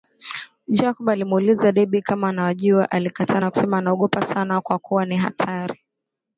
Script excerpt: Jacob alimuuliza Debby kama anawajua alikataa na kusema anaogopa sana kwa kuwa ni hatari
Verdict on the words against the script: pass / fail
pass